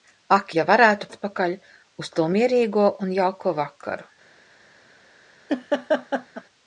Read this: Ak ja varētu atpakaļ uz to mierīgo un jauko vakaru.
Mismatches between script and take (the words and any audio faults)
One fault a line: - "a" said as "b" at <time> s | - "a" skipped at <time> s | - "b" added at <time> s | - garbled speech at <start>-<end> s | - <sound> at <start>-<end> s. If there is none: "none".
- laugh at 5.5-6.4 s